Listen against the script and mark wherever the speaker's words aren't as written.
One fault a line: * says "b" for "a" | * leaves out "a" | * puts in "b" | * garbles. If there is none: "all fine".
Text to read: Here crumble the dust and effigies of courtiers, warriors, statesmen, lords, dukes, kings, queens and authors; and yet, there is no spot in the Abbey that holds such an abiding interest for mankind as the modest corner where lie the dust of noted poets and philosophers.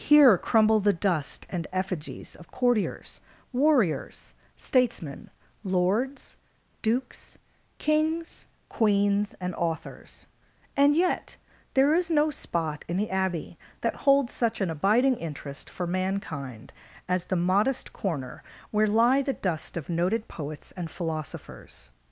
all fine